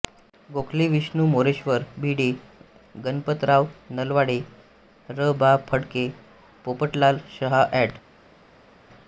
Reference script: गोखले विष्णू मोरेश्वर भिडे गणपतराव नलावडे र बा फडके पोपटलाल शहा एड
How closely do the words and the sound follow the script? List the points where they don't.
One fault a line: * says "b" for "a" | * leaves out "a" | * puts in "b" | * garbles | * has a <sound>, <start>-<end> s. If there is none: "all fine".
all fine